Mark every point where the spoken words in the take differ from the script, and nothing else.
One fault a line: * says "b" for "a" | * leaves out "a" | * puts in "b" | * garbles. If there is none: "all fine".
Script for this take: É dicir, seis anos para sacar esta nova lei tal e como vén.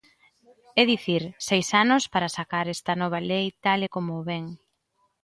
all fine